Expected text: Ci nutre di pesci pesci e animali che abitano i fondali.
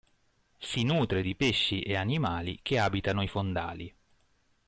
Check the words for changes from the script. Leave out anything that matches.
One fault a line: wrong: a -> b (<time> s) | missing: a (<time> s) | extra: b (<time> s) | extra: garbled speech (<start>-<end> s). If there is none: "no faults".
wrong: Ci -> Si (0.6 s)
missing: pesci (1.8 s)